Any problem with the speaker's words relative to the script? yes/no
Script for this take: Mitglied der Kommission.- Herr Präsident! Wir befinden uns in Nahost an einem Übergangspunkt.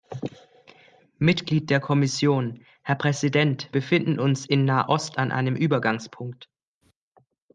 yes